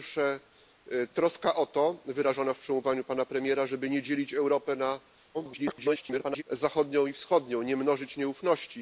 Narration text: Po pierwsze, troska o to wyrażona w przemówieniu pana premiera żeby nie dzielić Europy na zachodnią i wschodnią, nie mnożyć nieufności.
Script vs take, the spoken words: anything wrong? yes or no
yes